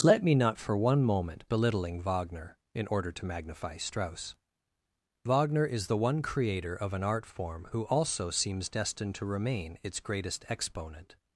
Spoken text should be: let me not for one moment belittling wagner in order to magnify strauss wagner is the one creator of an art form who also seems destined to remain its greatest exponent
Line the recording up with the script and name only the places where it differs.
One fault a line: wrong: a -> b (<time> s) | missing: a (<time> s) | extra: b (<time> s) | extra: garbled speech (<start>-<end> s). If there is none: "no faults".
no faults